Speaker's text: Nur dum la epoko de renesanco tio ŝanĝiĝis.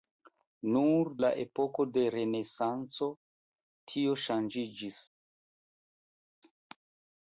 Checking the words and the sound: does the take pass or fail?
fail